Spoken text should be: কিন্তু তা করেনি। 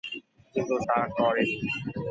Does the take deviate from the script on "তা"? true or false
false